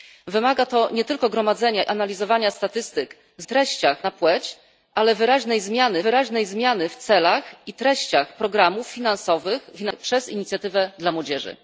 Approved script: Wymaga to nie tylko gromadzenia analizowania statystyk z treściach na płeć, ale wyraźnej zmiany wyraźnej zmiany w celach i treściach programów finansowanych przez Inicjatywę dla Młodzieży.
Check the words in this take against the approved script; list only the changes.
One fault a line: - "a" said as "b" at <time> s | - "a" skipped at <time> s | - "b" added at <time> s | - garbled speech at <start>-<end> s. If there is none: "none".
none